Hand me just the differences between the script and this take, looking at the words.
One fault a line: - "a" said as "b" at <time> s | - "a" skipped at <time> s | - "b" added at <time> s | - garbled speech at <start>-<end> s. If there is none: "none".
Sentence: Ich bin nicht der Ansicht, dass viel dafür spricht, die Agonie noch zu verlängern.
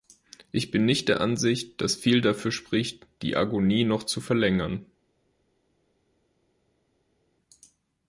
none